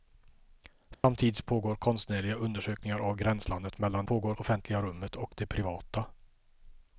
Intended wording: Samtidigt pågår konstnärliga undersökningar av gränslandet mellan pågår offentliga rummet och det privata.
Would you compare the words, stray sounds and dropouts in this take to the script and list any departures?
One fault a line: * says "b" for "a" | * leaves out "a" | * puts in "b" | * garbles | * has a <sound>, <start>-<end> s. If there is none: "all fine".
* has a dropout, 0.9-1.0 s